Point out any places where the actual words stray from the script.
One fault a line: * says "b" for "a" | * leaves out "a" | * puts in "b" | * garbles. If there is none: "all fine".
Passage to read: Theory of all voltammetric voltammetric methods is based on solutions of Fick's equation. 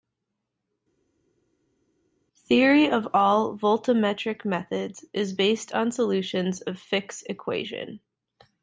* leaves out "voltammetric"